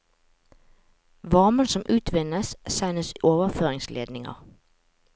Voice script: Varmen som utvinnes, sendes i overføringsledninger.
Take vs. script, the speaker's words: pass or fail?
pass